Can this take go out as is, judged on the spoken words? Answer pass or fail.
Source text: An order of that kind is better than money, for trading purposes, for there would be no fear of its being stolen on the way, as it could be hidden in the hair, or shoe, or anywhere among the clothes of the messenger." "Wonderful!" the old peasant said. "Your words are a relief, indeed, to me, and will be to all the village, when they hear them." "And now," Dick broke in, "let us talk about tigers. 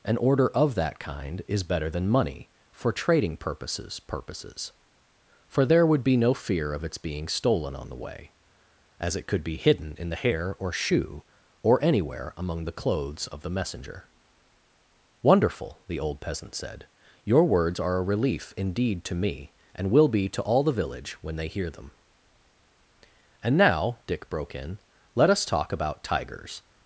fail